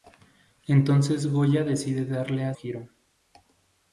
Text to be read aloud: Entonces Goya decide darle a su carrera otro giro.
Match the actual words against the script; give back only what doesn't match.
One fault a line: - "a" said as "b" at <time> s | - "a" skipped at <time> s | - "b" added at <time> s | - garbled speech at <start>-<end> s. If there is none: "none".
- "su carrera otro" skipped at 2.5 s